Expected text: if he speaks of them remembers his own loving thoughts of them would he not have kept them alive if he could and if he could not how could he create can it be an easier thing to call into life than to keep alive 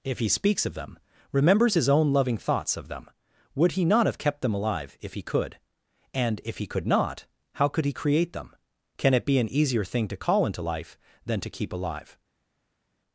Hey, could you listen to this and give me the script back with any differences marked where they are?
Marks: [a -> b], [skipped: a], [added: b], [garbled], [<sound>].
if he speaks of them remembers his own loving thoughts of them would he not have kept them alive if he could and if he could not how could he create [added: them] can it be an easier thing to call into life than to keep alive